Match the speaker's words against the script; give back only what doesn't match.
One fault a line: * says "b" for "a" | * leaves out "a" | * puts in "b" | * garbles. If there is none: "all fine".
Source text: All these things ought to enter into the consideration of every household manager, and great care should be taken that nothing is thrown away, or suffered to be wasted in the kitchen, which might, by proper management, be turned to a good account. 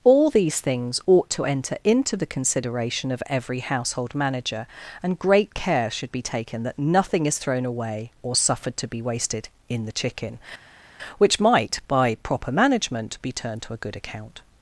* says "chicken" for "kitchen"